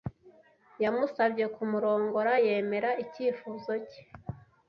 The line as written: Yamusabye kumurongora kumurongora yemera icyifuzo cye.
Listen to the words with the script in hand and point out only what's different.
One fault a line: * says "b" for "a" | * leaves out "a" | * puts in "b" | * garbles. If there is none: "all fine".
* leaves out "kumurongora"